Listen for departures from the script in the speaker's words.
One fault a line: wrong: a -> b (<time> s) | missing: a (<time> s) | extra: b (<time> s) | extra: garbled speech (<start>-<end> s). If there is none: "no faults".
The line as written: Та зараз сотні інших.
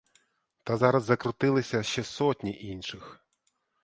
extra: закрутилися ще (1.0 s)